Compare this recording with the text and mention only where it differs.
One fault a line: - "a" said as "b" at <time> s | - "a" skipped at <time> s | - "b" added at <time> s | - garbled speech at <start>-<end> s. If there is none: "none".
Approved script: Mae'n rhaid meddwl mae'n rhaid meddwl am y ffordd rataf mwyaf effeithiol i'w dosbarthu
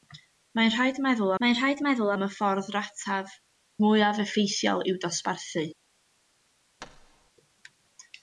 none